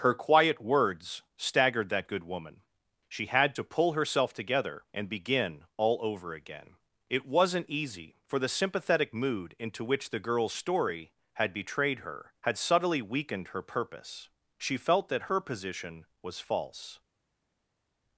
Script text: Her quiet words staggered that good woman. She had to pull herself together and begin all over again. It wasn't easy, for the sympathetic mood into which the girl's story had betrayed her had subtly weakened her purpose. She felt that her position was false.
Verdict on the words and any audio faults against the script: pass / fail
pass